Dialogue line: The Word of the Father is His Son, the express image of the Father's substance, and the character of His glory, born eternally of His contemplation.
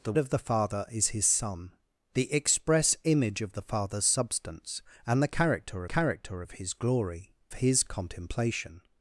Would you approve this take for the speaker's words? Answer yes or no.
no